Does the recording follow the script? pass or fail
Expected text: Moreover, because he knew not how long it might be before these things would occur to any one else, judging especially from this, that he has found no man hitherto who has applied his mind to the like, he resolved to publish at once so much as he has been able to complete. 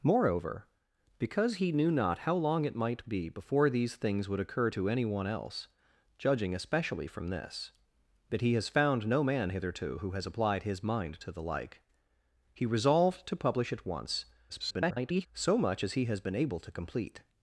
fail